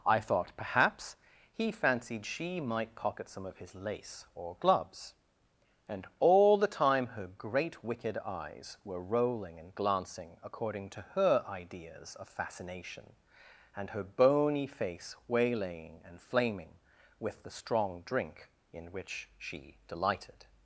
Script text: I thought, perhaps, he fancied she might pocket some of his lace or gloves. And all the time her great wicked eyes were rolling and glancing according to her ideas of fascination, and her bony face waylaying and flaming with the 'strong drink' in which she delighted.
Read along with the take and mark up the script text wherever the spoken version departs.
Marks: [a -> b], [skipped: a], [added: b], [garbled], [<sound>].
I thought, perhaps, he fancied she might pocket some of his lace or gloves. And all the time her great wicked eyes were rolling and glancing according to her ideas of fascination, and her bony face waylaying and flaming with the 'strong drink' in which she delighted.